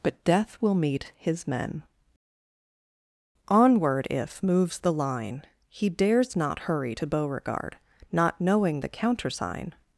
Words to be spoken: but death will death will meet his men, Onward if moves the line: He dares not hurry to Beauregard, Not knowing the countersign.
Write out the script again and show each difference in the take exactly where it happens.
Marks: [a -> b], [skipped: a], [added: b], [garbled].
but death will [skipped: death will] meet his men, Onward if moves the line: He dares not hurry to Beauregard, Not knowing the countersign.